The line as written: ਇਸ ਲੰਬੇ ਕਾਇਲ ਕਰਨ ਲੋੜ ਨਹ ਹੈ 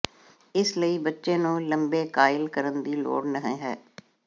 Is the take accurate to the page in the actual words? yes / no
no